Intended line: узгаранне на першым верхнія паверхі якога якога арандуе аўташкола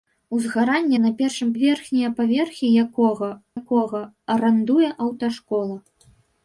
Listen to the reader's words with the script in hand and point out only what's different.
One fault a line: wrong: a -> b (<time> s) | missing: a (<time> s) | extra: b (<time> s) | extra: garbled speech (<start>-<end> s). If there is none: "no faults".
no faults